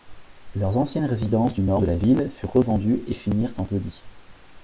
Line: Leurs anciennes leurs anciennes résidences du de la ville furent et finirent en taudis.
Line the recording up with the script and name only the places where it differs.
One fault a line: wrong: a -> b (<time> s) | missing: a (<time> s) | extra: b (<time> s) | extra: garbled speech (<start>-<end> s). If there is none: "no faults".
missing: leurs anciennes (1.1 s)
extra: nord (1.6 s)
extra: revendues (2.5 s)